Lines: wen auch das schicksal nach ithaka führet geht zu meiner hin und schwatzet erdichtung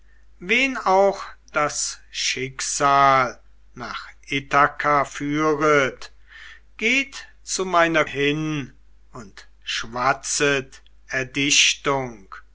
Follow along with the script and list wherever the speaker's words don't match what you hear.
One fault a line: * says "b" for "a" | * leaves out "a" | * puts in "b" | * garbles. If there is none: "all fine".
all fine